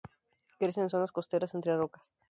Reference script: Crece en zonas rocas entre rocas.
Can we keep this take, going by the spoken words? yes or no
no